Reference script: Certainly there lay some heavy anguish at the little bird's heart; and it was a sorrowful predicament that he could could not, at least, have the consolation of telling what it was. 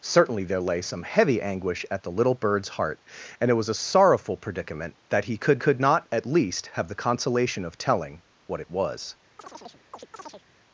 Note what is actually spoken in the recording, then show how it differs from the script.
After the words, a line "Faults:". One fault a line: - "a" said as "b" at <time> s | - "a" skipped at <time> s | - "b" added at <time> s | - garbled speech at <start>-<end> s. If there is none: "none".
Certainly there lay some heavy anguish at the little bird's heart; and it was a sorrowful predicament that he could could not, at least, have the consolation of telling what it was.
Faults:
none